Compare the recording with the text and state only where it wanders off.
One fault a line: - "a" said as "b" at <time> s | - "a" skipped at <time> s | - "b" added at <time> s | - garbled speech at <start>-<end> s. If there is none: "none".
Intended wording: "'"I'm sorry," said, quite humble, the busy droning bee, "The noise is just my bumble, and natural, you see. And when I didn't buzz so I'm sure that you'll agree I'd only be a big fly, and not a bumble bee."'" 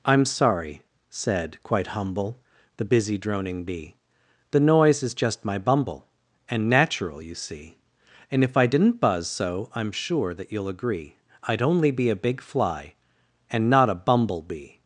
- "when" said as "if" at 8.4 s